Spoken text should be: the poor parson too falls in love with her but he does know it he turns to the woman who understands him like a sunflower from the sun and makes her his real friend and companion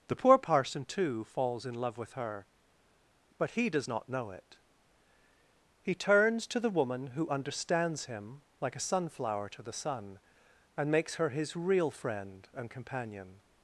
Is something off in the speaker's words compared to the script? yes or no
yes